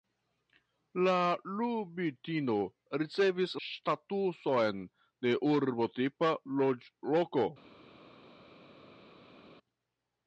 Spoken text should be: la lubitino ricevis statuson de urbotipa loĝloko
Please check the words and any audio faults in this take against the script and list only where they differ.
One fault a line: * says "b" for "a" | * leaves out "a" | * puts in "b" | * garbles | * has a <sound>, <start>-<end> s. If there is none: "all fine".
all fine